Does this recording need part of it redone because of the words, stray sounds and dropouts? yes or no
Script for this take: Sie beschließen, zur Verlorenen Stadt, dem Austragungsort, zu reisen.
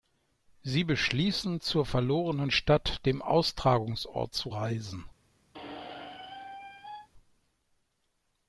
yes